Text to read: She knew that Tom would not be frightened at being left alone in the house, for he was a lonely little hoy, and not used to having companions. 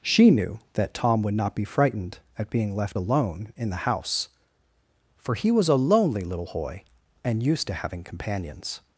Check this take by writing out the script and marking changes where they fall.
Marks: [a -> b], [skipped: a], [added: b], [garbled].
She knew that Tom would not be frightened at being left alone in the house, for he was a lonely little hoy, and [skipped: not] used to having companions.